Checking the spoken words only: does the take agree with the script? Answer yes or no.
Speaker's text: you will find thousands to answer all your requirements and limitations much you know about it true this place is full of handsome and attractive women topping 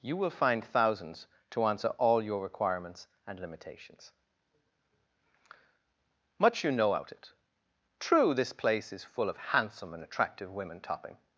no